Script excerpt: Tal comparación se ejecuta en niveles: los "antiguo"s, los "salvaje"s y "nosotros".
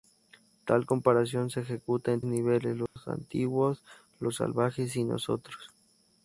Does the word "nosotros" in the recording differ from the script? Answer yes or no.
no